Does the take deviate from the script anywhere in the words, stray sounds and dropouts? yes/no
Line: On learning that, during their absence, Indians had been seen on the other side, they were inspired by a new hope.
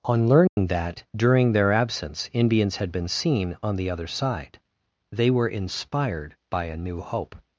yes